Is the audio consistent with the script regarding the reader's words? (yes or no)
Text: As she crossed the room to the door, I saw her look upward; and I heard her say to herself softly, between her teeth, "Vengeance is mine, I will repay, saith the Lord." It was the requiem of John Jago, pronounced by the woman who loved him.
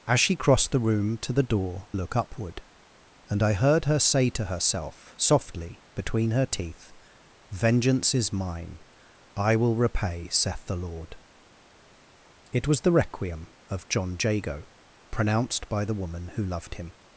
no